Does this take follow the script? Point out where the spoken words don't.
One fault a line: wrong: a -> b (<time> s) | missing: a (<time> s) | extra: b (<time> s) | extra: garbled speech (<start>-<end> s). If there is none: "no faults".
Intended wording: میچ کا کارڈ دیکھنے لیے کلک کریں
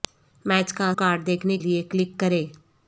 no faults